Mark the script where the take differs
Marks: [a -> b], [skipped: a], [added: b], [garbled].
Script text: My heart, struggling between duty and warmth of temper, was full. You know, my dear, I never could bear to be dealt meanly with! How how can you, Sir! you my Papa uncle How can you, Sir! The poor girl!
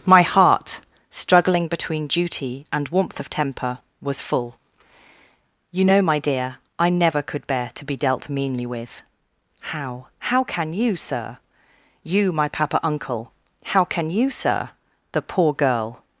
My heart, struggling between duty and warmth of temper, was full. You know, my dear, I never could bear to be dealt meanly with! How how can you, Sir! you my Papa uncle How can you, Sir! The poor girl!